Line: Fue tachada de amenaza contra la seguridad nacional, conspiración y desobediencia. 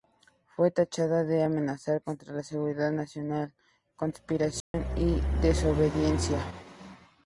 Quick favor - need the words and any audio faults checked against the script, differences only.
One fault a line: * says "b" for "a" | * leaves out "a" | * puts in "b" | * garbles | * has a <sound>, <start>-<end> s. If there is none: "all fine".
* has a dropout, 4.6-4.7 s